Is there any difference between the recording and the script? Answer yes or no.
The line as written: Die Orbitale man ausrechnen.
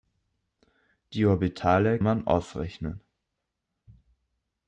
no